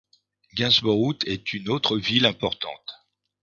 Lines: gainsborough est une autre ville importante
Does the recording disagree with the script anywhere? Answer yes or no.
no